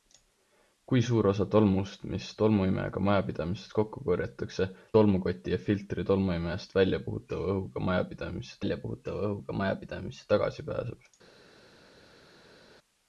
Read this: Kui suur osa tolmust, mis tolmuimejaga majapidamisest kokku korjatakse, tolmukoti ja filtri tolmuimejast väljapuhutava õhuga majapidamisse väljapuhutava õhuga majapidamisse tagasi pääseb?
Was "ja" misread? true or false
false